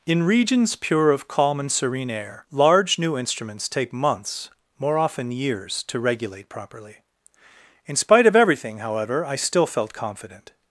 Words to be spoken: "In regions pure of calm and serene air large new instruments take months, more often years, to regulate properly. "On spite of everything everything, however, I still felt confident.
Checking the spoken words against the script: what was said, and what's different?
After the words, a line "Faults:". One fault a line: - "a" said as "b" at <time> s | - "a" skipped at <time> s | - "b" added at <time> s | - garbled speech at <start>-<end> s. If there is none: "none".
"In regions pure of calm and serene air large new instruments take months, more often years, to regulate properly. "In spite of everything, however, I still felt confident.
Faults:
- "On" said as "In" at 7.8 s
- "everything" skipped at 8.8 s